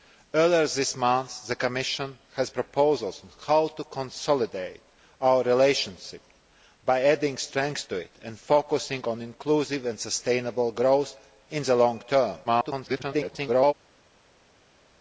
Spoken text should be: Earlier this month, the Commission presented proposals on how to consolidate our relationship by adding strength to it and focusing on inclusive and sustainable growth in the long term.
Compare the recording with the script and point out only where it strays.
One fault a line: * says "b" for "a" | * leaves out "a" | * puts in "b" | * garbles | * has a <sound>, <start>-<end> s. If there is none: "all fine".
* leaves out "presented"
* garbles